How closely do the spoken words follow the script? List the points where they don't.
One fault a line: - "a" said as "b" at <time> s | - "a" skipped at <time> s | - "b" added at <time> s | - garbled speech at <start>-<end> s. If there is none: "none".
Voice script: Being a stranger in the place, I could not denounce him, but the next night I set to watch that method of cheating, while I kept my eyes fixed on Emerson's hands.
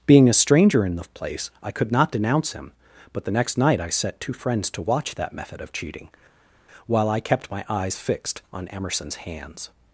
- "two friends" added at 4.2 s